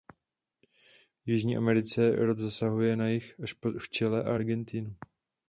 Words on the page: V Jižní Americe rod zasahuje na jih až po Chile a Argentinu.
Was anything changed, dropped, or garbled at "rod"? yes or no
no